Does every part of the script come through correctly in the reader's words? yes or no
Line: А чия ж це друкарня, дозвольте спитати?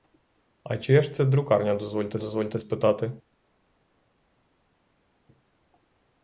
no